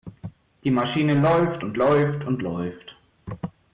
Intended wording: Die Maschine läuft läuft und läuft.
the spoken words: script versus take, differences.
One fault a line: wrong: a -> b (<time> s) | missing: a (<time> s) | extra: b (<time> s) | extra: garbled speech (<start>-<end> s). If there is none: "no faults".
extra: und (1.6 s)